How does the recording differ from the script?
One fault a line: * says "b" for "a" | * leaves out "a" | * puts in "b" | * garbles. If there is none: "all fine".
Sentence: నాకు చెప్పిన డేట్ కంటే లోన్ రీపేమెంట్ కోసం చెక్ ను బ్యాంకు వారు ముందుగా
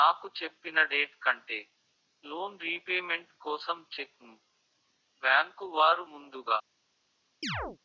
all fine